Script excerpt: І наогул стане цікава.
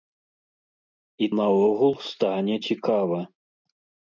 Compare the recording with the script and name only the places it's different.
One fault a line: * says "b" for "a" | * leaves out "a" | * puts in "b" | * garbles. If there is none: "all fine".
all fine